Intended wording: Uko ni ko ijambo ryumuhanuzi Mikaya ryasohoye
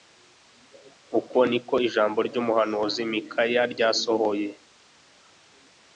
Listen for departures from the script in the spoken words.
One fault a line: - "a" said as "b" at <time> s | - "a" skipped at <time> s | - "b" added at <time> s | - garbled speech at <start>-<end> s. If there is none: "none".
none